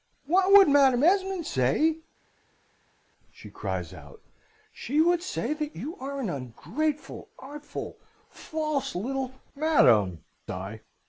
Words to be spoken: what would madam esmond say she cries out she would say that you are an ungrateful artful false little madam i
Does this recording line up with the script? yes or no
yes